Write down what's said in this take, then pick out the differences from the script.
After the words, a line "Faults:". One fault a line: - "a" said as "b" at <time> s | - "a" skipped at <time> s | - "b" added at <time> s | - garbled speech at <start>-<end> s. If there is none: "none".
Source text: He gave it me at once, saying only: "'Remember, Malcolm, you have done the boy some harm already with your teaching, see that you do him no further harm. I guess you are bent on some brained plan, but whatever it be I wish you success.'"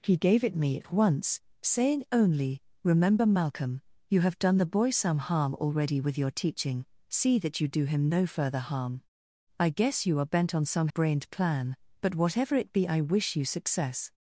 He gave it me at once, saying only: "'Remember, Malcolm, you have done the boy some harm already with your teaching, see that you do him no further harm. I guess you are bent on some brained plan, but whatever it be I wish you success.'"
Faults:
none